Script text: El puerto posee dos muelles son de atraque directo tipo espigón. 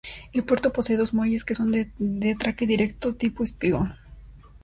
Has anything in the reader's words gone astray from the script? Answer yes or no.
yes